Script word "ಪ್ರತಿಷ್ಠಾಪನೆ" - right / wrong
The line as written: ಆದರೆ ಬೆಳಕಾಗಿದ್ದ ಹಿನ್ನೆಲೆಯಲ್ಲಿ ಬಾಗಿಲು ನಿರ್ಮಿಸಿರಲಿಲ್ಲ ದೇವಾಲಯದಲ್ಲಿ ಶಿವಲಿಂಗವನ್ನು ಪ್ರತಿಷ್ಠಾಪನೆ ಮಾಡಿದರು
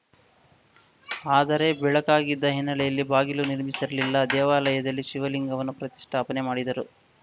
right